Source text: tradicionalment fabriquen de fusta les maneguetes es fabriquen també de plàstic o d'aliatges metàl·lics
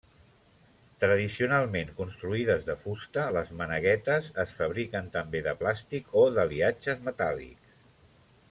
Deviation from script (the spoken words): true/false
true